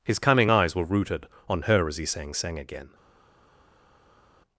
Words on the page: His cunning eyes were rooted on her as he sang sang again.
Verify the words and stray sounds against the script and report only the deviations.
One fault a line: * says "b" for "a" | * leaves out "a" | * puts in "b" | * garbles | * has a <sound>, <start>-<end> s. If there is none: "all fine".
all fine